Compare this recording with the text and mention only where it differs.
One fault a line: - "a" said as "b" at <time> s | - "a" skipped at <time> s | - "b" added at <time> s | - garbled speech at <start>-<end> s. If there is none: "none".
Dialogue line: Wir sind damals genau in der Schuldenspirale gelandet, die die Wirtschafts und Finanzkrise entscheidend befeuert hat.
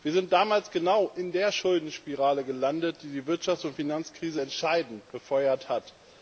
none